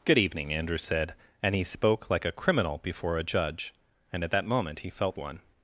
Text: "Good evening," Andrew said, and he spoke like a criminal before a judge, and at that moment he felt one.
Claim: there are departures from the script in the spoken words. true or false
false